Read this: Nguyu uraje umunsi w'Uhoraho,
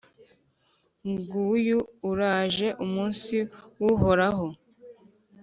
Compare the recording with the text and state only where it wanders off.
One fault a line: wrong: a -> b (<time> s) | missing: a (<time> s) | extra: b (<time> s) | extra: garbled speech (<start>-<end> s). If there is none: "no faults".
no faults